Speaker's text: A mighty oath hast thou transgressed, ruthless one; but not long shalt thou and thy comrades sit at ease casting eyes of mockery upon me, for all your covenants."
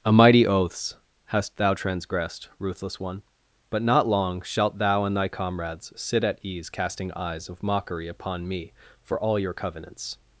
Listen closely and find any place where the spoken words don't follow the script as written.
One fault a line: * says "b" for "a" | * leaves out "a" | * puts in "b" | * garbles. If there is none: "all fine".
* says "oaths" for "oath"